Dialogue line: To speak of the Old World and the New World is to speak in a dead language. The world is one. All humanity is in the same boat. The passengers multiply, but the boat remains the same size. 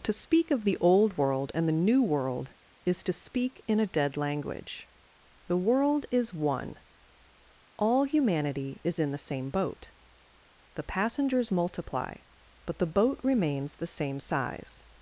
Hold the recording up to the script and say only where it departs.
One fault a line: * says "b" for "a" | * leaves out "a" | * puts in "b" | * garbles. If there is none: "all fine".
all fine